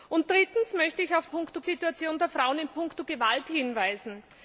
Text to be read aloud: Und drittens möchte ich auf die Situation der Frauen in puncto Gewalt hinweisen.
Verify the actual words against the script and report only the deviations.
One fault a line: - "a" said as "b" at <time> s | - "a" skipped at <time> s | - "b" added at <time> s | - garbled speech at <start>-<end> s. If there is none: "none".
- "die" said as "puncto" at 1.3 s